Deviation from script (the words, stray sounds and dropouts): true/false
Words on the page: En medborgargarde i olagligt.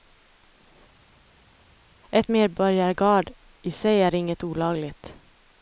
true